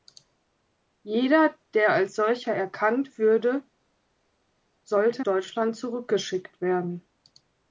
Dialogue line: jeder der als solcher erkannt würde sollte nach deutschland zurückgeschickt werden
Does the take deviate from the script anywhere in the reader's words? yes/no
yes